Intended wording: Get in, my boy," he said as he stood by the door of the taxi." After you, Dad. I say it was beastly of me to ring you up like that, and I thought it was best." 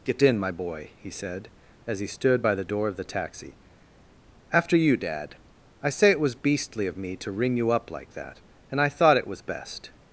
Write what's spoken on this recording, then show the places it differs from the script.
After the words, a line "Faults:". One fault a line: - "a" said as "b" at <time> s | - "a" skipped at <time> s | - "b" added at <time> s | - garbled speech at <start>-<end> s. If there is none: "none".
Get in, my boy," he said as he stood by the door of the taxi." After you, Dad. I say it was beastly of me to ring you up like that, and I thought it was best."
Faults:
none